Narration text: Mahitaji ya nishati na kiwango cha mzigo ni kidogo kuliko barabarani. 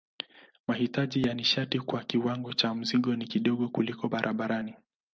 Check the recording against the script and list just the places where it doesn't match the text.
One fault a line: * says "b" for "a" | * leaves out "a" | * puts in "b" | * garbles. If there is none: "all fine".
* says "kwa" for "na"